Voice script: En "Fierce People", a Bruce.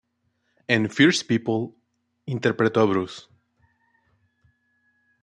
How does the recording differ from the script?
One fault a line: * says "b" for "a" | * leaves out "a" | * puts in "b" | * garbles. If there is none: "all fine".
* puts in "interpretó"